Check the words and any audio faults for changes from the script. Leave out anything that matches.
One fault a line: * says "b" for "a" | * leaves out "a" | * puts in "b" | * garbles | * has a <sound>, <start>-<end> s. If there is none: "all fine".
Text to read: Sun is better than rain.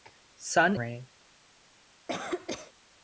* leaves out "is better than"
* has a cough, 2.1-2.7 s